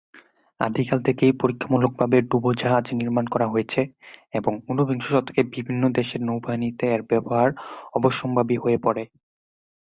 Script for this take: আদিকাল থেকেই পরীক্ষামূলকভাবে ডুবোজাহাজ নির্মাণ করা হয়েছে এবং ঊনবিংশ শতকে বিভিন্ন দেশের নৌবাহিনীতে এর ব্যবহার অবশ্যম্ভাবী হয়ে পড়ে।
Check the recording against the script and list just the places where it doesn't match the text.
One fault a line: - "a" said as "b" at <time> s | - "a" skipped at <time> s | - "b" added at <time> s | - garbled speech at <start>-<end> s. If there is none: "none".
none